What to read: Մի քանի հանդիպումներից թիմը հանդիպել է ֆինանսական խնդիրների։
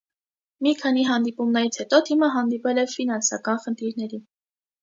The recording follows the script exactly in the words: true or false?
false